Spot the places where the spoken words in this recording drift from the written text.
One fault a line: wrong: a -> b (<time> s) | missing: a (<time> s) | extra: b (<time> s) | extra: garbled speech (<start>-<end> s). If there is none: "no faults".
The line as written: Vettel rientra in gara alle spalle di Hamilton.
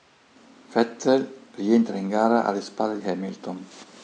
missing: di (3.0 s)